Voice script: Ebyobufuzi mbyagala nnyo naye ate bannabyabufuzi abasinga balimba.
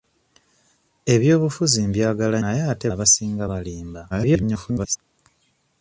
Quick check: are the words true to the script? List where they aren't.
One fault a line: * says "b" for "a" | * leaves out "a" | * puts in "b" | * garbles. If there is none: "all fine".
* leaves out "nnyo"
* leaves out "bannabyabufuzi"
* garbles